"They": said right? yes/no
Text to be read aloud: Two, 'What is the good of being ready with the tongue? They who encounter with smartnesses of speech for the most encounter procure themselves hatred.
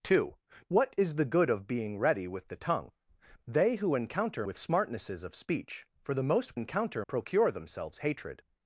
yes